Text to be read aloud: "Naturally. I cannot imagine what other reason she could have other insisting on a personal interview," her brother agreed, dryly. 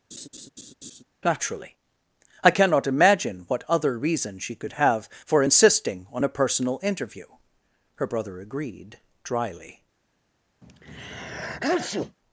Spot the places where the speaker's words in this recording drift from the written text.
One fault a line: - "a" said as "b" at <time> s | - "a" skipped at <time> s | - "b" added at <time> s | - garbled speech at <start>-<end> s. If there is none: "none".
- "other" said as "for" at 5.2 s